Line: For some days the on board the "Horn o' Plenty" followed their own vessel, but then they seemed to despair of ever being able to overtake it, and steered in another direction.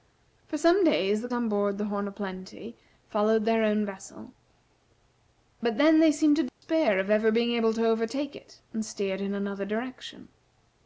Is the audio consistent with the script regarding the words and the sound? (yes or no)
no